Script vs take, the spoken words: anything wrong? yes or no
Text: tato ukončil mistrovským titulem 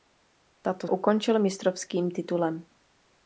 no